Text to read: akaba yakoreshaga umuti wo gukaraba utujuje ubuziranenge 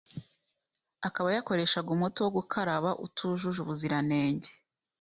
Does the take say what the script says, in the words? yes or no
yes